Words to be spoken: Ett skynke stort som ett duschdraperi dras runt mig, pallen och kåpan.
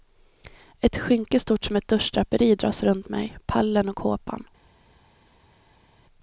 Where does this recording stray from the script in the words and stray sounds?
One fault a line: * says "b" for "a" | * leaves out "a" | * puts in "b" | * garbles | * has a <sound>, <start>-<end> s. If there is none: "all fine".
all fine